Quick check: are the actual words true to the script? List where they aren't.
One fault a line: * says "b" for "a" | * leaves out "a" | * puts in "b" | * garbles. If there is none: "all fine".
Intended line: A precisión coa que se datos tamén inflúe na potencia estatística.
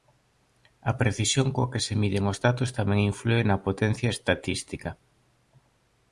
* puts in "miden os"